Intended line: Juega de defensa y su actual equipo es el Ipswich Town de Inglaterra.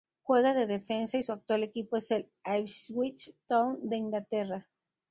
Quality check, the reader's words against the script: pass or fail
pass